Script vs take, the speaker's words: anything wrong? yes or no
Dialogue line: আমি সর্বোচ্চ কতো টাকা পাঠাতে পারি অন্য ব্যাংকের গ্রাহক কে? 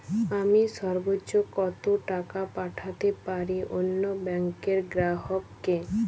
no